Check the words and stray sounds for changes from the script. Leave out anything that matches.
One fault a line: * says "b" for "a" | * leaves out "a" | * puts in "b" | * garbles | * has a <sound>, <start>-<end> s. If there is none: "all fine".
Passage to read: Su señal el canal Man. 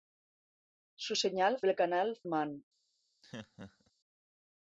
* has a laugh, 3.2-3.9 s